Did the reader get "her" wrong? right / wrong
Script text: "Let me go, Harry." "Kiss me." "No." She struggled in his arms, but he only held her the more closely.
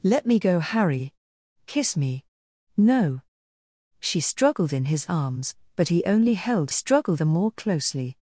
wrong